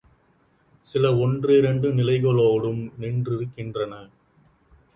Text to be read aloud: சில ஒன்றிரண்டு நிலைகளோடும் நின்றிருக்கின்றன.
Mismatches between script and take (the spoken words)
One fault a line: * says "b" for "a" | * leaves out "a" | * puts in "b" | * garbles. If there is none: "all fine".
all fine